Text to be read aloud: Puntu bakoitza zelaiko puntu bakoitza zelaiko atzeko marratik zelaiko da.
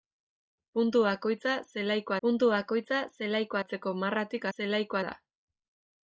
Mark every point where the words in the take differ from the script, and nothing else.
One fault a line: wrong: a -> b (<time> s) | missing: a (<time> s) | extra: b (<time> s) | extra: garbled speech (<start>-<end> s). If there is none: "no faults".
no faults